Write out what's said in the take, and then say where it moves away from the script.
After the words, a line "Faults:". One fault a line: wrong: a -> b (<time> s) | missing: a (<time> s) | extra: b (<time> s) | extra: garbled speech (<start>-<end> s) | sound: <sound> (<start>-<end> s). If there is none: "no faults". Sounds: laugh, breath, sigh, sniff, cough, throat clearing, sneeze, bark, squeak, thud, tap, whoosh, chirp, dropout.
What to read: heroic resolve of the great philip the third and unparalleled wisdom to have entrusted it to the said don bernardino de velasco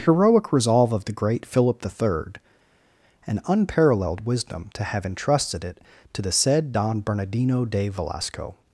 heroic resolve of the great philip the third and unparalleled wisdom to have entrusted it to the said don bernardino de velasco
Faults:
no faults